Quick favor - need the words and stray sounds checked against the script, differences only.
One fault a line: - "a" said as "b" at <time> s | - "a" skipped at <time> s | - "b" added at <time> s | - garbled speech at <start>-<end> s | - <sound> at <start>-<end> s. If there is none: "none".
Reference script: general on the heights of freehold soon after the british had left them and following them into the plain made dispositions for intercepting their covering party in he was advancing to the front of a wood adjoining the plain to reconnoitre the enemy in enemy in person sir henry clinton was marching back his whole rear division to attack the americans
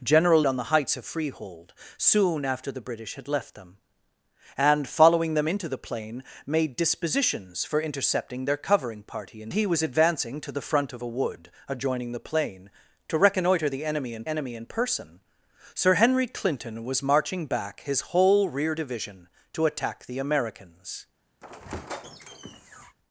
- squeak at 21.4-23.0 s